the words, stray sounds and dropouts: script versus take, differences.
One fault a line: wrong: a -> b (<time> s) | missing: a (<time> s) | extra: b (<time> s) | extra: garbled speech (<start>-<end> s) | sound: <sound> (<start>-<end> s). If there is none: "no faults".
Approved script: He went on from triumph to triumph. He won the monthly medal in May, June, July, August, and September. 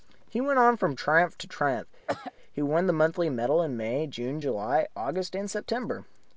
sound: throat clearing (2.1-2.3 s)